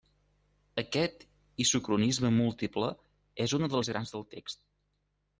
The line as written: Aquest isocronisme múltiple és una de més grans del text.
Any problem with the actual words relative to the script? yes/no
no